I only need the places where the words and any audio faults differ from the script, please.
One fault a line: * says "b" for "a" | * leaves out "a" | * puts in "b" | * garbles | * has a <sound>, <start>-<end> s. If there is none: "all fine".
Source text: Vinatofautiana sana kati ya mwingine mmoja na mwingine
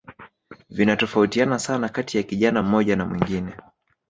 * says "kijana" for "mwingine"